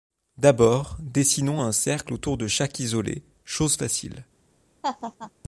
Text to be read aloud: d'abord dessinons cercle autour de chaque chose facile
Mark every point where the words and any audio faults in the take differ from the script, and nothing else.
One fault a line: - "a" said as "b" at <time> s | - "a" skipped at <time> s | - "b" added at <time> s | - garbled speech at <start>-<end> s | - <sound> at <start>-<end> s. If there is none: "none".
- "un" added at 1.6 s
- "isolé" added at 2.8 s
- laugh at 4.8-5.3 s